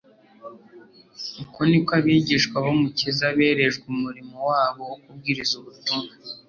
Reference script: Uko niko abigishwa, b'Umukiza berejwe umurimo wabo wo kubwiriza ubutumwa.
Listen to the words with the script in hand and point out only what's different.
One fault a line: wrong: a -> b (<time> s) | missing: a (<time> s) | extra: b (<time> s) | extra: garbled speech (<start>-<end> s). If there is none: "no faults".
no faults